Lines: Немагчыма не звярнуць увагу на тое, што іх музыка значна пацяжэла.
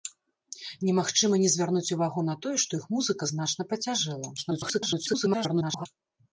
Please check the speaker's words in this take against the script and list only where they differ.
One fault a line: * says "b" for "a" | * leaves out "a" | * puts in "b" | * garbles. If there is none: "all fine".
* garbles